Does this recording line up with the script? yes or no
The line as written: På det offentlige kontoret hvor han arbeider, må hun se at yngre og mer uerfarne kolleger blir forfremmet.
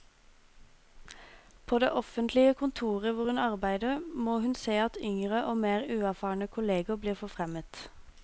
no